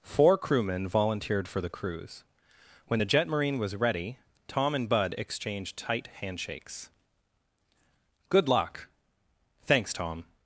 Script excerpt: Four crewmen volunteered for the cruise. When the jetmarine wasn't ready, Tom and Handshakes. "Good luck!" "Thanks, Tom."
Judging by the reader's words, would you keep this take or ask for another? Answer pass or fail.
fail